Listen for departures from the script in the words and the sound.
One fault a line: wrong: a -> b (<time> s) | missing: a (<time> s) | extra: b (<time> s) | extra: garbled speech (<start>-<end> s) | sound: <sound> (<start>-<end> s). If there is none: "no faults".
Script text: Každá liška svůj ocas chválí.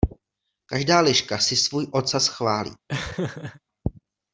extra: si (1.4 s)
sound: laugh (2.9-3.6 s)